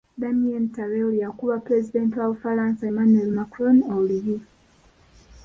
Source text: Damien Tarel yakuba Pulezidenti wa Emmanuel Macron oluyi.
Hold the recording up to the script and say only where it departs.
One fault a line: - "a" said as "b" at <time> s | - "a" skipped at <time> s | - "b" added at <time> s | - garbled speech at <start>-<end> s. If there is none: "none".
- "Bufalansa" added at 2.3 s